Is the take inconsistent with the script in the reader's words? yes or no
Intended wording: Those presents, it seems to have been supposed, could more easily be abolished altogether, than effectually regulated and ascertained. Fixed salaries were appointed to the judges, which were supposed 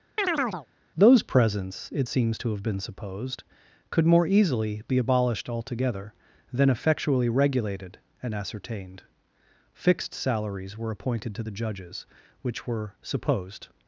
no